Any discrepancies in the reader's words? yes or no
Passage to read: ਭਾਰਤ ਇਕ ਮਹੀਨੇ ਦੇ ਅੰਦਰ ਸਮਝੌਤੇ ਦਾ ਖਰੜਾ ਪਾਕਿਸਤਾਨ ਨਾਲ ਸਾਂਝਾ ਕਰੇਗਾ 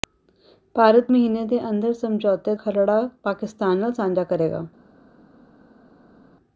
yes